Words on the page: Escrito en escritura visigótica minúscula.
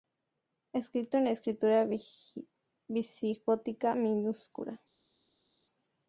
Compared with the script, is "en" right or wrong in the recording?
right